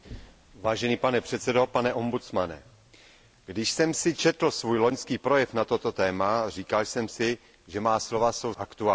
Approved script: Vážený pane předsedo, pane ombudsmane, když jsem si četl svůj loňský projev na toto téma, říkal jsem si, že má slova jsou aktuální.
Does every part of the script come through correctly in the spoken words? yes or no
yes